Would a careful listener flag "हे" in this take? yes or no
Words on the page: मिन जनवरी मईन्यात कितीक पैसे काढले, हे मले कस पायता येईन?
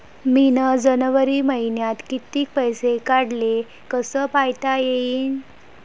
yes